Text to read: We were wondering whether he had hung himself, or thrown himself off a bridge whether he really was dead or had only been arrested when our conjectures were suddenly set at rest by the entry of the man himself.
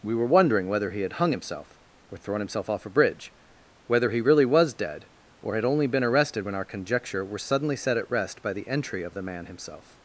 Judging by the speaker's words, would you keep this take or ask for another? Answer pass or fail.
fail